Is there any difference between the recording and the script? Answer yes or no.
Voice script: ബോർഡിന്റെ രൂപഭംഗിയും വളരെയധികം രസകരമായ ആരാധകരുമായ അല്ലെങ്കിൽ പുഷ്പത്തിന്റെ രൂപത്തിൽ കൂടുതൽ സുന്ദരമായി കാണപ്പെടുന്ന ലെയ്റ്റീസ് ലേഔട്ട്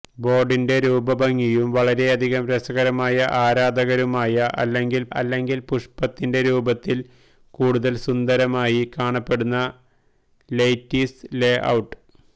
yes